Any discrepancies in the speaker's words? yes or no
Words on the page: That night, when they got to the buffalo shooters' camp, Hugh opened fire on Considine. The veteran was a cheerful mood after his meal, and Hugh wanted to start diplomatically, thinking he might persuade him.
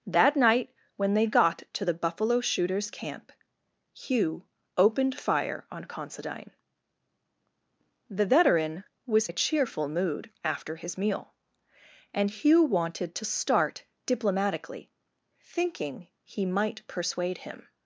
no